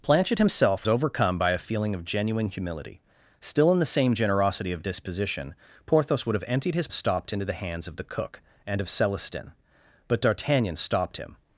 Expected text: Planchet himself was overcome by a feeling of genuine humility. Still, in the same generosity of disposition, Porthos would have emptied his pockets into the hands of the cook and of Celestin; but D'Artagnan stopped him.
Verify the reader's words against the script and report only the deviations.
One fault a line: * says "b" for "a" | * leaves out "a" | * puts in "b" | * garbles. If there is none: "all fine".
* leaves out "was"
* says "stopped" for "pockets"